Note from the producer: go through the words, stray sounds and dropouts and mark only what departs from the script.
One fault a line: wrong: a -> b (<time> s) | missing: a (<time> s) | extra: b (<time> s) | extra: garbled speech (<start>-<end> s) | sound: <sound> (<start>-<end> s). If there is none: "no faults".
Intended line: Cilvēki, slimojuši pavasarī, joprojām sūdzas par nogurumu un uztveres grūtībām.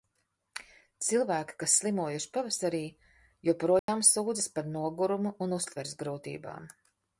extra: kas (1.6 s)
sound: dropout (3.8-3.9 s)